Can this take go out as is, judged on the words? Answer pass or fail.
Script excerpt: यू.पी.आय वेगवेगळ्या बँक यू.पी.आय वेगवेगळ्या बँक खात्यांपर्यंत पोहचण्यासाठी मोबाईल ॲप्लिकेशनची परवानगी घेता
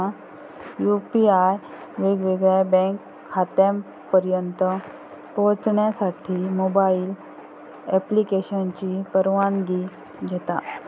fail